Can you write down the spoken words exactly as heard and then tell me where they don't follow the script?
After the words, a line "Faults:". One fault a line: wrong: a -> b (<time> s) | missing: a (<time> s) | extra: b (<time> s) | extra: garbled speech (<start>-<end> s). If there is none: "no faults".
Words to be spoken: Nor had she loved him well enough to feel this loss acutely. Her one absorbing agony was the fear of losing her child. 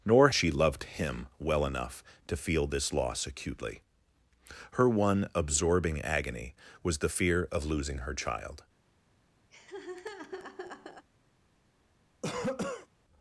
Nor she loved him well enough to feel this loss acutely. Her one absorbing agony was the fear of losing her child.
Faults:
missing: had (0.3 s)